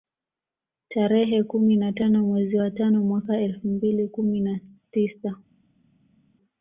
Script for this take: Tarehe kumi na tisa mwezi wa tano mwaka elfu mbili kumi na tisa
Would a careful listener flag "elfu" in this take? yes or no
no